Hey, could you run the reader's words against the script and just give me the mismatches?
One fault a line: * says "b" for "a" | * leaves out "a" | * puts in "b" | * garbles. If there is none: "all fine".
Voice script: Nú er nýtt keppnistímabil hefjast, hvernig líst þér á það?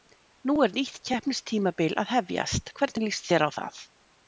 * puts in "að"